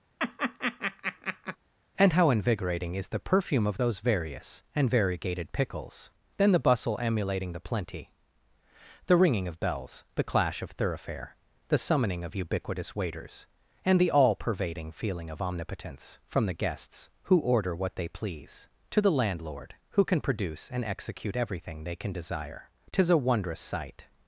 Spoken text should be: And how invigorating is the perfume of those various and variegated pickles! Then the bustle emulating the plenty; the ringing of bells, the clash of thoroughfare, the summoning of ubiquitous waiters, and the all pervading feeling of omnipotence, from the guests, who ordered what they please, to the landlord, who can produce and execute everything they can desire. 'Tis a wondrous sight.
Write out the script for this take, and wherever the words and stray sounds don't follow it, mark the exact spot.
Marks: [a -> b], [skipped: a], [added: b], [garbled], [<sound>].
[laugh] And how invigorating is the perfume of those various and variegated pickles! Then the bustle emulating the plenty; the ringing of bells, the clash of thoroughfare, the summoning of ubiquitous waiters, and the all pervading feeling of omnipotence, from the guests, who [ordered -> order] what they please, to the landlord, who can produce and execute everything they can desire. 'Tis a wondrous sight.